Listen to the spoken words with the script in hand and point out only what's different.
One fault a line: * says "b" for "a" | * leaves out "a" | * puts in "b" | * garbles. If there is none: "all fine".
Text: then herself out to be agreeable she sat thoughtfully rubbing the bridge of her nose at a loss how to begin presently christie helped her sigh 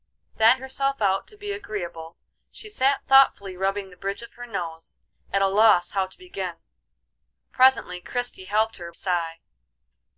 all fine